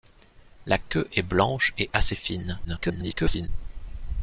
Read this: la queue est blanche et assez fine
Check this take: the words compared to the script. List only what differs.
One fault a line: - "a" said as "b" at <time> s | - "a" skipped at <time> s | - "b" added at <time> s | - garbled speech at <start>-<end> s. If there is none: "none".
- garbled speech at 2.6-3.5 s